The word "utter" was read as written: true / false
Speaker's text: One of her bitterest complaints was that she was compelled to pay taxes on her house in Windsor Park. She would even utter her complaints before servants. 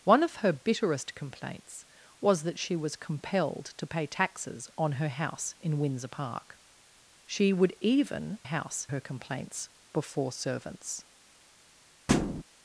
false